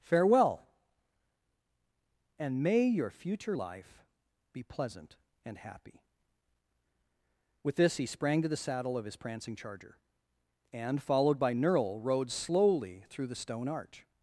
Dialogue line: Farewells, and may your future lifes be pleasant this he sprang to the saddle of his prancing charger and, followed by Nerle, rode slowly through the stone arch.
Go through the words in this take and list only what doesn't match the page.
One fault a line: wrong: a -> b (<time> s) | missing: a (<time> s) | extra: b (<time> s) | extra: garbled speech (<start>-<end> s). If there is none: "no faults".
wrong: Farewells -> Farewell (0.0 s)
wrong: lifes -> life (3.5 s)
extra: and happy With (5.4 s)